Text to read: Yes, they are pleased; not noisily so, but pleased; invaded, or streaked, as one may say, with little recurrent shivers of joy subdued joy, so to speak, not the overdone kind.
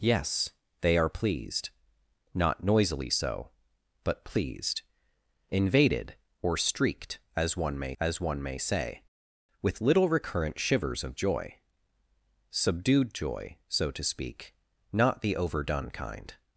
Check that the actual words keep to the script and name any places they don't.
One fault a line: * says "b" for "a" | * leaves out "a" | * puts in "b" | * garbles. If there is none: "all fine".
* puts in "as one may"